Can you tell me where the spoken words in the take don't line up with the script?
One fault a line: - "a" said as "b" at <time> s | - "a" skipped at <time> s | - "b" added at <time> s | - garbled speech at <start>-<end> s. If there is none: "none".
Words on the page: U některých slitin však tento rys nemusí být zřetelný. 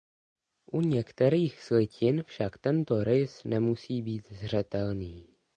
none